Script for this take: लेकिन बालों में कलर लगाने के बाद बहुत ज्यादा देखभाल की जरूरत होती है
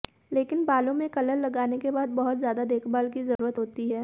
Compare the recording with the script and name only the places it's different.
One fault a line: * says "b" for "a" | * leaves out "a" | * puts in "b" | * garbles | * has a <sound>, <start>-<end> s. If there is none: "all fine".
* has a dropout, 3.4-3.4 s